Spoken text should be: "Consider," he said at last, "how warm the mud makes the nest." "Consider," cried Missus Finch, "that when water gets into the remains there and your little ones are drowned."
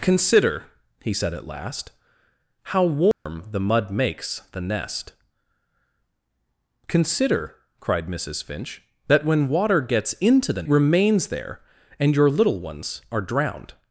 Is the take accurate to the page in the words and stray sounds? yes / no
no